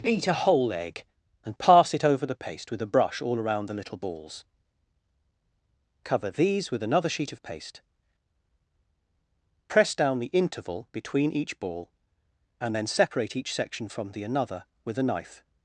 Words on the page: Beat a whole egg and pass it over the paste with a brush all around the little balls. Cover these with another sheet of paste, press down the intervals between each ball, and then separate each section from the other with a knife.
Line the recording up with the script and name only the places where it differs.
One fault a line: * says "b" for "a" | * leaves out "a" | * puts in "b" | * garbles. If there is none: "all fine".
* says "interval" for "intervals"
* says "another" for "other"